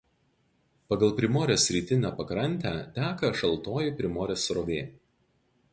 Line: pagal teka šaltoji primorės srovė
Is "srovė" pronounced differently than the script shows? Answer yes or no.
no